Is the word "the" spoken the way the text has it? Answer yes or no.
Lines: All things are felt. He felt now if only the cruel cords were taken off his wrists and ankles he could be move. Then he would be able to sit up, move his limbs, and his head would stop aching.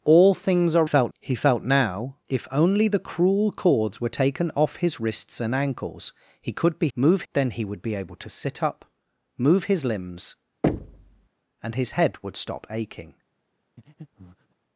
yes